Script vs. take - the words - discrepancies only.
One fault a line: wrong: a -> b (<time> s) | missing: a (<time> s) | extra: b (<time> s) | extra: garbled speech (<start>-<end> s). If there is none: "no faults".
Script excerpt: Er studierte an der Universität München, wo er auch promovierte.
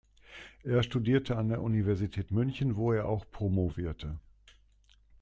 no faults